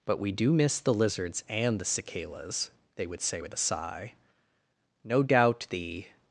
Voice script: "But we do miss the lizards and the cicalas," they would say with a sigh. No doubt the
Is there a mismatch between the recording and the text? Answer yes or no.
no